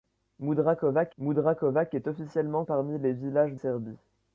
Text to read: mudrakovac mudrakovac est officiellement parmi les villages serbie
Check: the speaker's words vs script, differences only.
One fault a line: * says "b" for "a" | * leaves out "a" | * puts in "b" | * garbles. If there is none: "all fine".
all fine